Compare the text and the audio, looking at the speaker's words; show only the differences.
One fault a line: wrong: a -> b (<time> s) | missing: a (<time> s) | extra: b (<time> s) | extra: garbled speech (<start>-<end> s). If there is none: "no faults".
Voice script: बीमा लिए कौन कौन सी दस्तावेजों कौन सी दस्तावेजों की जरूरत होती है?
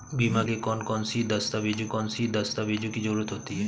no faults